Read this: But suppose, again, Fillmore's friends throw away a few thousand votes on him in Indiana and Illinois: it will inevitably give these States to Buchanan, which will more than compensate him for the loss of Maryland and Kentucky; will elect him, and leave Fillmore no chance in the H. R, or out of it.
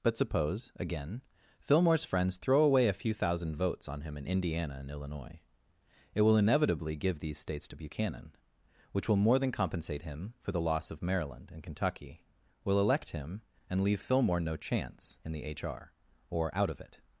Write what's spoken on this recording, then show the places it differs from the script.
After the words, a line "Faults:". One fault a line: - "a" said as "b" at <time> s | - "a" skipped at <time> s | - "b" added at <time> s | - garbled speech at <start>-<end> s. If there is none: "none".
But suppose, again, Fillmore's friends throw away a few thousand votes on him in Indiana and Illinois: it will inevitably give these States to Buchanan, which will more than compensate him for the loss of Maryland and Kentucky; will elect him, and leave Fillmore no chance in the H. R, or out of it.
Faults:
none